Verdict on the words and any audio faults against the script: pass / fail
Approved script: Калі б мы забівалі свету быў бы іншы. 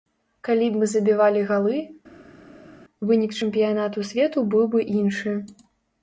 fail